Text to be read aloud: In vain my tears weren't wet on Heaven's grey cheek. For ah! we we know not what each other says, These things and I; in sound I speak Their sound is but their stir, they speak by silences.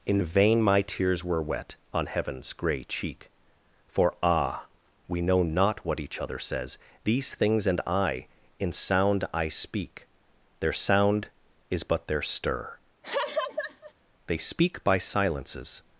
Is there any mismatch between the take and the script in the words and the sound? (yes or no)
yes